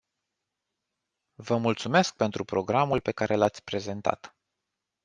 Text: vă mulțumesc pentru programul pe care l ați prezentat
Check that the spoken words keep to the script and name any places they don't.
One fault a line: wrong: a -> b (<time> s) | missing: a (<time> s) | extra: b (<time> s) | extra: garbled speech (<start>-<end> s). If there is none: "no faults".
no faults